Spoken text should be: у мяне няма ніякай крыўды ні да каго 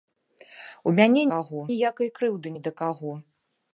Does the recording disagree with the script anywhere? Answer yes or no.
yes